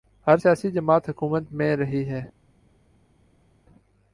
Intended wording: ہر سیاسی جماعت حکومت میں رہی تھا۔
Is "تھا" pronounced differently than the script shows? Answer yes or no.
yes